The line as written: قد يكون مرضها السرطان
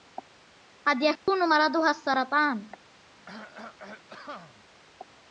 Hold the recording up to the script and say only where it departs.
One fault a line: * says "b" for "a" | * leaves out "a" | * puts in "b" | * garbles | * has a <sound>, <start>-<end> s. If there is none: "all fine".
* has a dropout, 1.2-1.3 s
* has a cough, 3.3-4.7 s